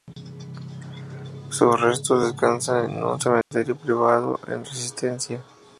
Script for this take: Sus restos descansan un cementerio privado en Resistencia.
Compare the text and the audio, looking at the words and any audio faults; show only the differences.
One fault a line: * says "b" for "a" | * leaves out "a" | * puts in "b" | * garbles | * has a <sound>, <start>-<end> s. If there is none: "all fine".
* puts in "en"
* has a dropout, 3.4-3.5 s